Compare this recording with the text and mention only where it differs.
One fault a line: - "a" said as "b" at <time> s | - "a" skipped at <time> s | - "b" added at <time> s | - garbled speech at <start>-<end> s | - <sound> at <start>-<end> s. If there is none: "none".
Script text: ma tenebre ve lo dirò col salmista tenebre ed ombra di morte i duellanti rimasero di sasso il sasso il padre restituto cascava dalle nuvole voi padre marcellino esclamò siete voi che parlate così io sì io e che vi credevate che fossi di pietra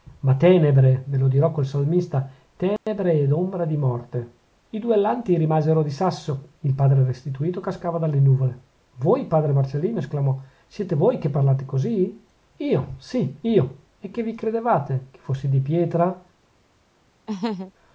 - dropout at 2.8-2.9 s
- "sasso il" skipped at 6.7 s
- laugh at 17.3-17.7 s